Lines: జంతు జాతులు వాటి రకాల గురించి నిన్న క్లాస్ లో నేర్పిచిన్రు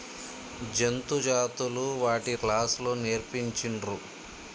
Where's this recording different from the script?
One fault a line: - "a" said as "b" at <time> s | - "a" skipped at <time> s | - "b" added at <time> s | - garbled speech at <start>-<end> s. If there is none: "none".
- "రకాల గురించి నిన్న" skipped at 2.3 s